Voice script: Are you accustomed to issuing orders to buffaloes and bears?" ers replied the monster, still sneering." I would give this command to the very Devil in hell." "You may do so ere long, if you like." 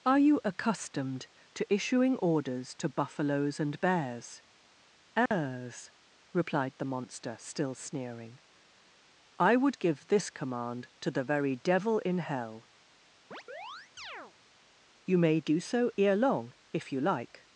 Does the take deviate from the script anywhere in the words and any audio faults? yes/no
yes